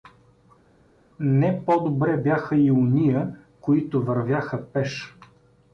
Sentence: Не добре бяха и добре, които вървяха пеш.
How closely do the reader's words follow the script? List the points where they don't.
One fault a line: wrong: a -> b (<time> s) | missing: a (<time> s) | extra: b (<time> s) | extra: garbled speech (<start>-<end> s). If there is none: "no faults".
extra: по (1.6 s)
wrong: добре -> ония (2.7 s)